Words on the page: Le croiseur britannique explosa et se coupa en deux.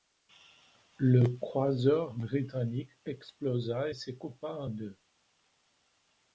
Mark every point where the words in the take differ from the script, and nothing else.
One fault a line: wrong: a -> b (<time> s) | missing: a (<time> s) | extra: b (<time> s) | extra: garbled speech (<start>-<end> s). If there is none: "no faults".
no faults